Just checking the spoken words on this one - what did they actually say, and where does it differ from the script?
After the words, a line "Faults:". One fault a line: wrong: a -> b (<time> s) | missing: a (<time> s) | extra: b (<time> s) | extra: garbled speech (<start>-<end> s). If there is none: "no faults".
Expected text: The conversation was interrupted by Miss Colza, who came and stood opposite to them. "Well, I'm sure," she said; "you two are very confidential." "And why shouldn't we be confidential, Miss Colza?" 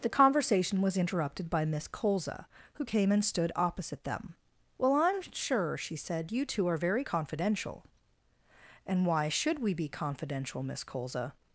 The conversation was interrupted by Miss Colza, who came and stood opposite them. "Well, I'm sure," she said; "you two are very confidential." "And why should we be confidential, Miss Colza?"
Faults:
missing: to (4.1 s)
wrong: shouldn't -> should (9.3 s)